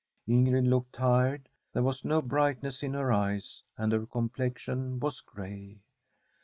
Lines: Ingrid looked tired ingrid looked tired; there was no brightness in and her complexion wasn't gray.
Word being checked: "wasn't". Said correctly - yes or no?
no